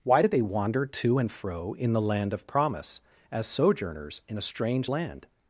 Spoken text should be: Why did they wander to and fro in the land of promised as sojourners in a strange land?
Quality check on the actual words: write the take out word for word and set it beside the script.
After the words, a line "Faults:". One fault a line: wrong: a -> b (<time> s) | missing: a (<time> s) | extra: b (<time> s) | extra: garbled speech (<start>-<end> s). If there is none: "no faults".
Why did they wander to and fro in the land of promise as sojourners in a strange land?
Faults:
wrong: promised -> promise (2.5 s)